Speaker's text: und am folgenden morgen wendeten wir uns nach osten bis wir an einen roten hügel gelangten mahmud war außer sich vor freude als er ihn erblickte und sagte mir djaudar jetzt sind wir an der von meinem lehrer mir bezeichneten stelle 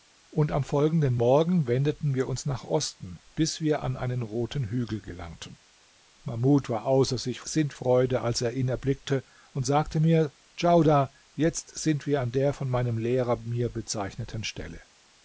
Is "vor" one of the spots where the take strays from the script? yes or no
yes